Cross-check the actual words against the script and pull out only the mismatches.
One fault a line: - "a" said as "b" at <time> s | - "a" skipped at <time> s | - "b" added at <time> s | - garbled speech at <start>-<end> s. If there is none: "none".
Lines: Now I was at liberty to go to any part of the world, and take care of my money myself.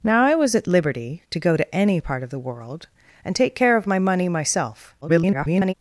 - garbled speech at 5.0-5.7 s